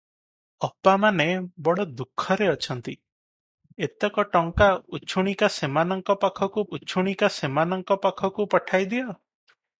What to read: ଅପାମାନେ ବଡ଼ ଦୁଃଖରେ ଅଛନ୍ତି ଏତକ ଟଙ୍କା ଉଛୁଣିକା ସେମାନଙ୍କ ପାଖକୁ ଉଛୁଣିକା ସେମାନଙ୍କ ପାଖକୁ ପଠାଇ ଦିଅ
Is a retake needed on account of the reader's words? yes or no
no